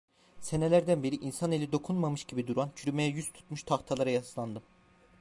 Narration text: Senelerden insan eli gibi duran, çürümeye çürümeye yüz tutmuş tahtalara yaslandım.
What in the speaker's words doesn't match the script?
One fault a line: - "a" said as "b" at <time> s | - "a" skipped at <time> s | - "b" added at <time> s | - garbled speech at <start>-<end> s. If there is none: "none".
- "beri" added at 1.0 s
- "dokunmamış" added at 1.7 s
- "çürümeye" skipped at 3.1 s